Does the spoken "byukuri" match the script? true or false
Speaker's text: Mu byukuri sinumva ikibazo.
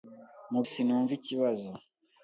false